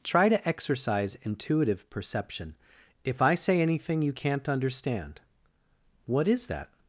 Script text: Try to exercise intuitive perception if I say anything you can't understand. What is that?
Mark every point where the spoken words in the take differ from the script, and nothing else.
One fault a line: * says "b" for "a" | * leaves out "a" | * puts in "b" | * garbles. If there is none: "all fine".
all fine